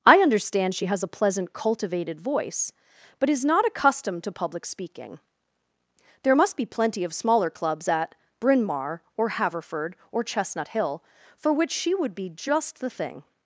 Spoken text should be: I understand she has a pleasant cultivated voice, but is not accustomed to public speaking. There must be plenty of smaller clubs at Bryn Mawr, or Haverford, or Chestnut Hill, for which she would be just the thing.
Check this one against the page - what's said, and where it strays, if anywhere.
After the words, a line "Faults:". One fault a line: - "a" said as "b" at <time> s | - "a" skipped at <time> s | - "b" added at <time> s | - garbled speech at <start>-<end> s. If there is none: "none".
I understand she has a pleasant cultivated voice, but is not accustomed to public speaking. There must be plenty of smaller clubs at Bryn Mawr, or Haverford, or Chestnut Hill, for which she would be just the thing.
Faults:
none